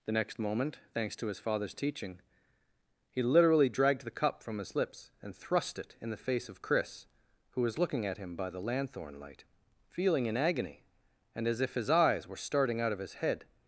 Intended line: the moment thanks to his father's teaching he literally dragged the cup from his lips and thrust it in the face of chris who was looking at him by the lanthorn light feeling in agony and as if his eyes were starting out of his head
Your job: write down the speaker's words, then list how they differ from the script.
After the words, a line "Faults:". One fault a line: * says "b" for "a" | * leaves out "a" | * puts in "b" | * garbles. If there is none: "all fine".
the next moment thanks to his father's teaching he literally dragged the cup from his lips and thrust it in the face of chris who was looking at him by the lanthorn light feeling in agony and as if his eyes were starting out of his head
Faults:
* puts in "next"